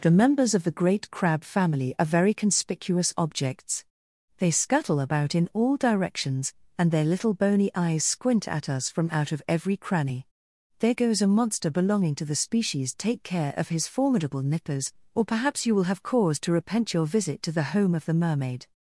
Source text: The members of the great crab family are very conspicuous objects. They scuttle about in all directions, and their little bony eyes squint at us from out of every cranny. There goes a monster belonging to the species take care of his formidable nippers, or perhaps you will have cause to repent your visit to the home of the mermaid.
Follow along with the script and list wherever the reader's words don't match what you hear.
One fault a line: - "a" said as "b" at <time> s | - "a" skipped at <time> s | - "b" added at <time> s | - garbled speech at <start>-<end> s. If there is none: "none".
none